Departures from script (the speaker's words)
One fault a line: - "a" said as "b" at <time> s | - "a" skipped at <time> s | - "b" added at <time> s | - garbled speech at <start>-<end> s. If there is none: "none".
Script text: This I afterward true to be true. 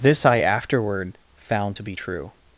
- "true" said as "found" at 1.5 s